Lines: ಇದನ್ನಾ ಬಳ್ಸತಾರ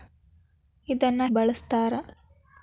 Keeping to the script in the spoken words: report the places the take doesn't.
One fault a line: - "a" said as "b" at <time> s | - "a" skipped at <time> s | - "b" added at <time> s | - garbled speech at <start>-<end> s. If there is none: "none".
none